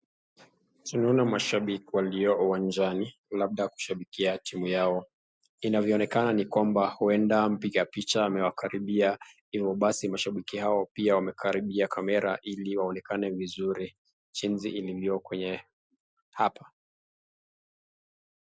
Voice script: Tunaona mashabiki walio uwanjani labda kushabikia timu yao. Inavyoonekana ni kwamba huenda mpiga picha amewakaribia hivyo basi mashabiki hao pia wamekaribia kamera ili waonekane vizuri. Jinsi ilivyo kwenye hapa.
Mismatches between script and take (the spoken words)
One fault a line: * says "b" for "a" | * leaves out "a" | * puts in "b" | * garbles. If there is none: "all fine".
all fine